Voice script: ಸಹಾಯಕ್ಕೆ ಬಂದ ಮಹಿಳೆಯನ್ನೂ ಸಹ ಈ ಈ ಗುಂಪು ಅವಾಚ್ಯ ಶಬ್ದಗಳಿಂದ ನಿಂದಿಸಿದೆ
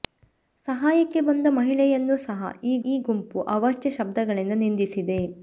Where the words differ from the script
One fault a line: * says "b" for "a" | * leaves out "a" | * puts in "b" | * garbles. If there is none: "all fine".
all fine